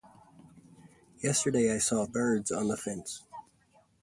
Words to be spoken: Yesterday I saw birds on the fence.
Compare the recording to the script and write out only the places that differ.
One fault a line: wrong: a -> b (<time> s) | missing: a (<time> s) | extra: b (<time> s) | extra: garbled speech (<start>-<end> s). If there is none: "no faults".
no faults